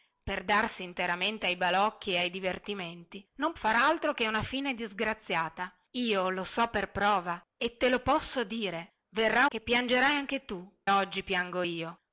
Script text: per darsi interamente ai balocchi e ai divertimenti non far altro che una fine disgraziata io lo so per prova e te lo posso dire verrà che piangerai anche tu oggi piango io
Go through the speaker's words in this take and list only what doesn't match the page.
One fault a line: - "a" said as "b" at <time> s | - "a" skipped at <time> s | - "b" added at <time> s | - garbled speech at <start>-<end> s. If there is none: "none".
none